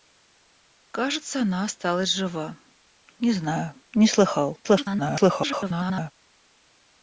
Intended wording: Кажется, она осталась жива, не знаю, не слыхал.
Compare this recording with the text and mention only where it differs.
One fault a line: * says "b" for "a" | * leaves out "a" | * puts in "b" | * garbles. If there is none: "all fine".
* garbles